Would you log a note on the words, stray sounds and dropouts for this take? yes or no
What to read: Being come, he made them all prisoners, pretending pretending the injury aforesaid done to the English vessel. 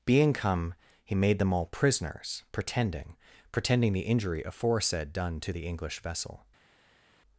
no